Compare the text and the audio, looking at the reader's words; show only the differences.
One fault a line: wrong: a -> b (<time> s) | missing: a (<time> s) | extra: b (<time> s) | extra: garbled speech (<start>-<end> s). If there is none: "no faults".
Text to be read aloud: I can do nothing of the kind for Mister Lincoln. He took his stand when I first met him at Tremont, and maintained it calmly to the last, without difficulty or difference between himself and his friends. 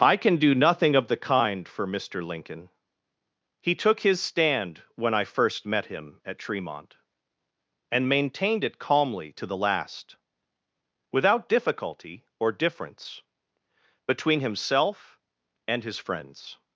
no faults